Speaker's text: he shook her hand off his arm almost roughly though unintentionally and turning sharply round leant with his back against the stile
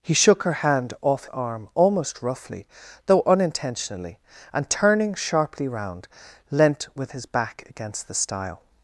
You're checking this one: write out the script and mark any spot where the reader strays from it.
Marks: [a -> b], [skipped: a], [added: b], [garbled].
he shook her hand off [skipped: his] arm almost roughly though unintentionally and turning sharply round leant with his back against the stile